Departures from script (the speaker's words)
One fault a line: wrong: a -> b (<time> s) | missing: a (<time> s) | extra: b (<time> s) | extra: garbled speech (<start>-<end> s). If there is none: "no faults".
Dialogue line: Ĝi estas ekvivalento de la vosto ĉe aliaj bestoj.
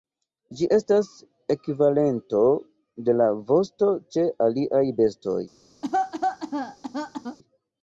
no faults